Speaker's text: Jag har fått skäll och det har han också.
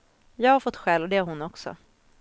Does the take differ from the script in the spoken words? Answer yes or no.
yes